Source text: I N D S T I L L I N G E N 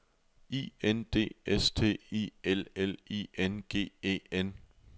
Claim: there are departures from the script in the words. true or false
false